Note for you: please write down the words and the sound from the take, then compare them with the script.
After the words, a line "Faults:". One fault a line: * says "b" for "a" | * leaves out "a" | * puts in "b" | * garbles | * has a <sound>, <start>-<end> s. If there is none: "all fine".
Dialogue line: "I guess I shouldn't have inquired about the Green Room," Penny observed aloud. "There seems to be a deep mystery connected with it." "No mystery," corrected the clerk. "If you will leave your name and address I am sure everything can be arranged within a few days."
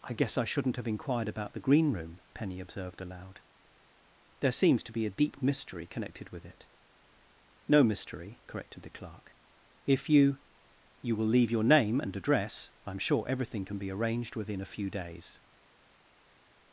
"I guess I shouldn't have inquired about the Green Room," Penny observed aloud. "There seems to be a deep mystery connected with it." "No mystery," corrected the clerk. "If you you will leave your name and address I am sure everything can be arranged within a few days."
Faults:
* puts in "you"